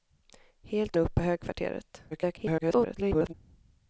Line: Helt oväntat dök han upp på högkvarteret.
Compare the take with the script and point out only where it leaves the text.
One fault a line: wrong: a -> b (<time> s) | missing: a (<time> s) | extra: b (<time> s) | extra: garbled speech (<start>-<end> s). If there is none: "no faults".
missing: oväntat dök han (1.0 s)
extra: garbled speech (2.1-3.3 s)